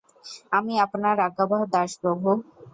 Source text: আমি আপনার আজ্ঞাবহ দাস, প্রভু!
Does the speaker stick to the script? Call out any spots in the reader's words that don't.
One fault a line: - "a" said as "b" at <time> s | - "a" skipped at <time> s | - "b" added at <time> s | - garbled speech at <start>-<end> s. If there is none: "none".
none